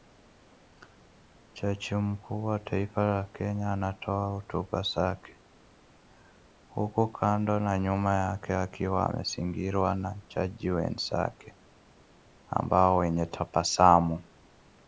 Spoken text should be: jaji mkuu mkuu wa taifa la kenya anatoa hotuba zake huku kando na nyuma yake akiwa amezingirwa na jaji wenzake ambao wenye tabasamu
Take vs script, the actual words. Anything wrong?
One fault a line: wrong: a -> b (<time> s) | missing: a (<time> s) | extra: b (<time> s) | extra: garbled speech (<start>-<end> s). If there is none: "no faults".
missing: mkuu (2.4 s)